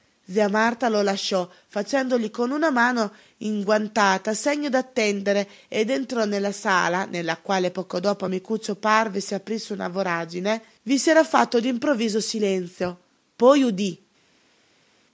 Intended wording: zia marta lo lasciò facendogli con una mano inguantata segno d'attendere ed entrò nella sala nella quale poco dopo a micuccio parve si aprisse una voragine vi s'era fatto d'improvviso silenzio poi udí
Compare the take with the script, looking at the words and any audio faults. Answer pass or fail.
pass